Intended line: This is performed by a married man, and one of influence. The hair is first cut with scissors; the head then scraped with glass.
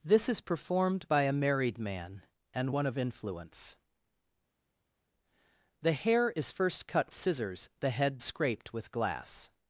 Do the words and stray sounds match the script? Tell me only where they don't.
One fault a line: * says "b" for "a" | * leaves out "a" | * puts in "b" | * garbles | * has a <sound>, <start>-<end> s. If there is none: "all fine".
* leaves out "with"
* leaves out "then"